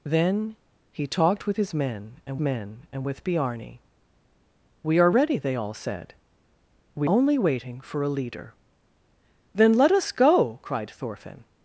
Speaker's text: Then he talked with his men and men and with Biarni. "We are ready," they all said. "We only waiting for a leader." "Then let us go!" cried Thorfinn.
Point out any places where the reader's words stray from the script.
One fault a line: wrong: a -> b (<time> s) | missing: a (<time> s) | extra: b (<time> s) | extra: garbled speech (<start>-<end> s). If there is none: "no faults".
no faults